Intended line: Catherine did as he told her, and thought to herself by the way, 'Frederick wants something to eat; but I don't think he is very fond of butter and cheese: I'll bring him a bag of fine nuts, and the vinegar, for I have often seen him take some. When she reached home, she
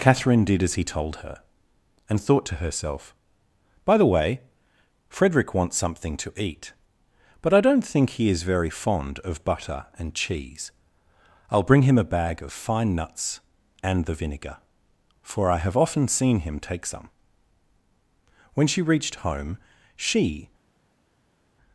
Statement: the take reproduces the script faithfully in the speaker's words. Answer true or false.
true